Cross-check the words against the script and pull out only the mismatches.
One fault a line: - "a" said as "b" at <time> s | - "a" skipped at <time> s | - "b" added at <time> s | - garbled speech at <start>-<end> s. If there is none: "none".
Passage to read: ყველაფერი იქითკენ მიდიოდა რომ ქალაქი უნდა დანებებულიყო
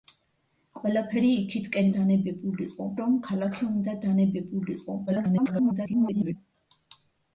- "მიდიოდა" said as "დანებებულიყო" at 2.0 s
- garbled speech at 5.1-6.4 s